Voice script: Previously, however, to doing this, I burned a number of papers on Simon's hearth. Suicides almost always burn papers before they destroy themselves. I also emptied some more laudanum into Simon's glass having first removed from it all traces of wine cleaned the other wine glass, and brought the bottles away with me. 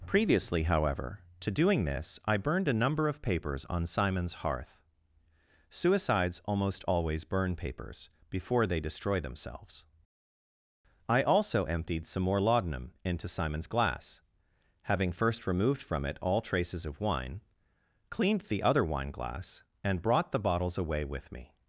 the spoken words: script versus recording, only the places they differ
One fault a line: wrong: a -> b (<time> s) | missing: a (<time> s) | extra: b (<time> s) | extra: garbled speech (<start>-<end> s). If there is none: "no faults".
no faults